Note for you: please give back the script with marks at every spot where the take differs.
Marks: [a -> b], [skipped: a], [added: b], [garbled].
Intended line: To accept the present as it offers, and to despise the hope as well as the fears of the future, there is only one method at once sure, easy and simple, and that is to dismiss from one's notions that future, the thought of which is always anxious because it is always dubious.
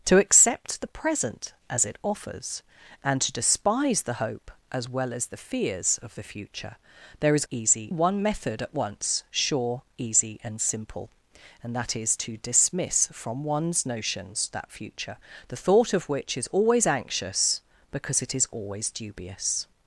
To accept the present as it offers, and to despise the hope as well as the fears of the future, there is [only -> easy] one method at once sure, easy and simple, and that is to dismiss from one's notions that future, the thought of which is always anxious because it is always dubious.